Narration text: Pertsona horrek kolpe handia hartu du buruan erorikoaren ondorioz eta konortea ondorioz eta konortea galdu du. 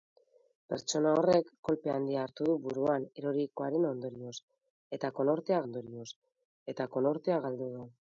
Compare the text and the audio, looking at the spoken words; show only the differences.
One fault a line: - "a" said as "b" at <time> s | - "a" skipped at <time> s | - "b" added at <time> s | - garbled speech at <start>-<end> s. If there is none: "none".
none